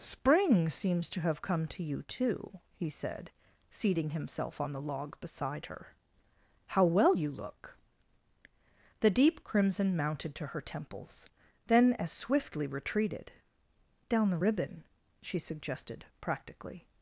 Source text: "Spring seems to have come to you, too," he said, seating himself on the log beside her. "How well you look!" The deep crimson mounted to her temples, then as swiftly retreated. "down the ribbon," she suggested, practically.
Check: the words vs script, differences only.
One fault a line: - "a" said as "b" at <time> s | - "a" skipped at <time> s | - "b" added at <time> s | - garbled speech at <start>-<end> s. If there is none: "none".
none